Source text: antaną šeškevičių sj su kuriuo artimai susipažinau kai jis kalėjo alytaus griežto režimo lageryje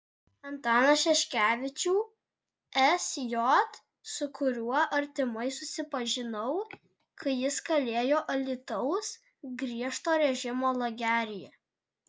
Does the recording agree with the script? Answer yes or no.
yes